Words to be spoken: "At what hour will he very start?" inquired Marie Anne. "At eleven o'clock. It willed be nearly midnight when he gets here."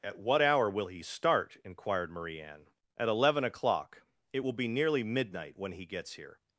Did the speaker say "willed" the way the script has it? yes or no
no